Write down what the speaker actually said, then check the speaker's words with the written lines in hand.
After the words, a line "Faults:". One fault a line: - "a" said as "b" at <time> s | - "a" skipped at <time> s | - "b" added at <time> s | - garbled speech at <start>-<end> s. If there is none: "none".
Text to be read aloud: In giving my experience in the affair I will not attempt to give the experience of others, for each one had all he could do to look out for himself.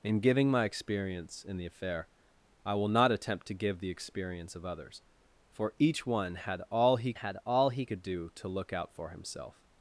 In giving my experience in the affair I will not attempt to give the experience of others, for each one had all he had all he could do to look out for himself.
Faults:
- "had all he" added at 7.1 s